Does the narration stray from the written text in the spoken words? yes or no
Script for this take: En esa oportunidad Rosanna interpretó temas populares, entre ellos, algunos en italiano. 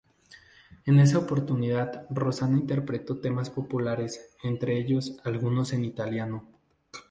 no